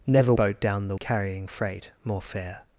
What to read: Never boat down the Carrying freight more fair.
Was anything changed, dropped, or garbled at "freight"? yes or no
no